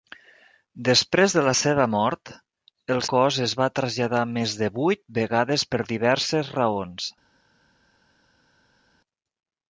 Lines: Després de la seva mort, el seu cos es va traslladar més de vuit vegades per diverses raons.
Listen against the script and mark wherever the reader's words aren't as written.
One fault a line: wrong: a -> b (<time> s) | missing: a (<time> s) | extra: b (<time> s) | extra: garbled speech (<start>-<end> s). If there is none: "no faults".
missing: seu (3.0 s)